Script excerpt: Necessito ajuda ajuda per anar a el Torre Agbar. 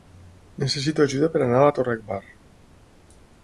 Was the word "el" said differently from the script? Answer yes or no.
yes